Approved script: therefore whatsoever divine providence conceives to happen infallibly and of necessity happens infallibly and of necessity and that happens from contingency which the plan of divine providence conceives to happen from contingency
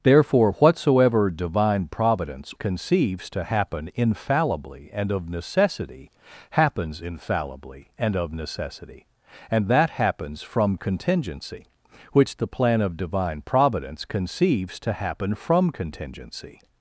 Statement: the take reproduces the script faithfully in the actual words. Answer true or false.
true